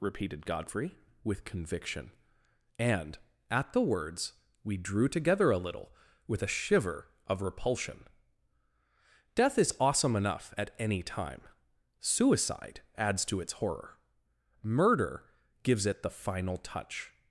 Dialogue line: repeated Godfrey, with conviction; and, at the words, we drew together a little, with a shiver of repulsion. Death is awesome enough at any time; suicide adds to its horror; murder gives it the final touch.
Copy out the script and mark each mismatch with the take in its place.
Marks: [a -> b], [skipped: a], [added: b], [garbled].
repeated Godfrey, with conviction; and, at the words, we drew together a little, with a shiver of repulsion. Death is awesome enough at any time; suicide adds to its horror; murder gives it the final touch.